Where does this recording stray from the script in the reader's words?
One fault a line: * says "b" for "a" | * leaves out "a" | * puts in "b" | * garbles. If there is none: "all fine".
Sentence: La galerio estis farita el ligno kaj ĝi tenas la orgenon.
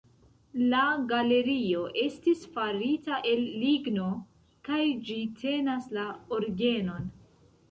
all fine